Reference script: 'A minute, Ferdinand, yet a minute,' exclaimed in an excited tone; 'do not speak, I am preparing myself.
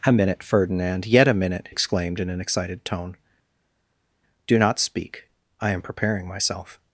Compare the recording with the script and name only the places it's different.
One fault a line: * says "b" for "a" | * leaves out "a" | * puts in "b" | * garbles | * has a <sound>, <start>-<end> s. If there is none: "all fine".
all fine